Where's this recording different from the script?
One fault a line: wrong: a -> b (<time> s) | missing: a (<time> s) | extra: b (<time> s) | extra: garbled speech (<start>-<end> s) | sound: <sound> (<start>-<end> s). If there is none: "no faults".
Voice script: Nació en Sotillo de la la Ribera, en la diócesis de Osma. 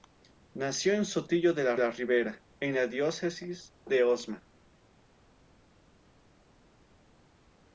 no faults